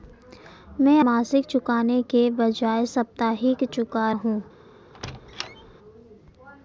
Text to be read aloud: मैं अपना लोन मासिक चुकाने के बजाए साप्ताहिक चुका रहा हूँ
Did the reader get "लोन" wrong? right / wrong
wrong